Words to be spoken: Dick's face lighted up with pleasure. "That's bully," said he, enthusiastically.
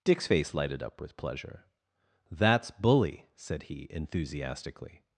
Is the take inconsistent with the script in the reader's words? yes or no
no